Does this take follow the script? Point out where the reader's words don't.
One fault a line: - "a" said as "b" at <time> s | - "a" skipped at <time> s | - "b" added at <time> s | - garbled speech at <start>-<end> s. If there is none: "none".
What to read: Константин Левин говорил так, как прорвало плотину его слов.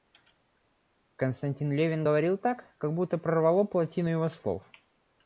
- "будто" added at 2.9 s